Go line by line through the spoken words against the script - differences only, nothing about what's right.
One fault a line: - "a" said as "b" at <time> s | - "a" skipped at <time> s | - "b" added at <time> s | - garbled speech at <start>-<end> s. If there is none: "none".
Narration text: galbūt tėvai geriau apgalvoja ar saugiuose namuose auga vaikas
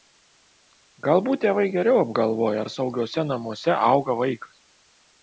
none